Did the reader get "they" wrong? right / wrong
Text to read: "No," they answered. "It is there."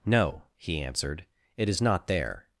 wrong